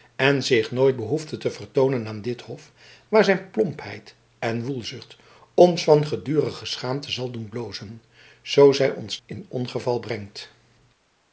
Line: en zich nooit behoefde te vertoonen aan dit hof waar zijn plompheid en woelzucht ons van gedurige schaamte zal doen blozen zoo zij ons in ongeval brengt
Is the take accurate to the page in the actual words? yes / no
yes